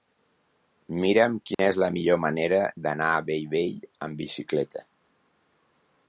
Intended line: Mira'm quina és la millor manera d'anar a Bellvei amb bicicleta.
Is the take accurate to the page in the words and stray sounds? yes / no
no